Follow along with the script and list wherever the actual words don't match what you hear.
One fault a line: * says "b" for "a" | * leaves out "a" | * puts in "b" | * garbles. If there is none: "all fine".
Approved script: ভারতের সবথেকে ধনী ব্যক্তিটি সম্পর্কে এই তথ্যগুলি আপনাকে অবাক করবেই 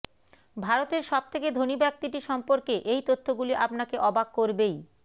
all fine